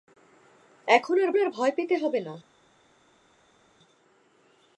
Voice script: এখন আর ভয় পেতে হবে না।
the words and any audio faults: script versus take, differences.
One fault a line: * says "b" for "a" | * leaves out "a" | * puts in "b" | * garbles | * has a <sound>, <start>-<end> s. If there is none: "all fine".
* puts in "আর"